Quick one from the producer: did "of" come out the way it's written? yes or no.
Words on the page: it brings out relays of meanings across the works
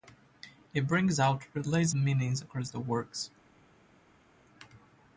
no